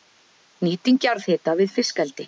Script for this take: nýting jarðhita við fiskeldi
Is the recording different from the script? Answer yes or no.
no